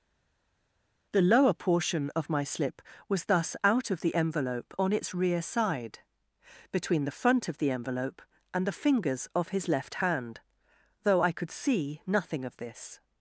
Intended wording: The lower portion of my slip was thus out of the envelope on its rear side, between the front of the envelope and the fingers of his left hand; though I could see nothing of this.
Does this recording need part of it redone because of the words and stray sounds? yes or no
no